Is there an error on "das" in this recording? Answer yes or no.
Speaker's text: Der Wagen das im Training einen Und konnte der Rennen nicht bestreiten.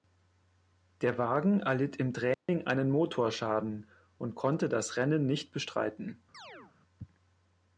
yes